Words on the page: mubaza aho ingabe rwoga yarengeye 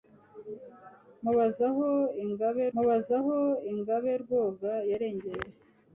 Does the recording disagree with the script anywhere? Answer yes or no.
yes